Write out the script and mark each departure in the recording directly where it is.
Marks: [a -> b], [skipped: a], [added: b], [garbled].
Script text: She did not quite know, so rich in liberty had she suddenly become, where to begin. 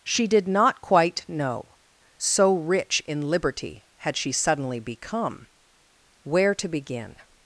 She did not quite know, so rich in liberty had she suddenly become, where to begin.